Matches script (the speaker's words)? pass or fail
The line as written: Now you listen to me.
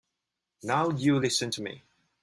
pass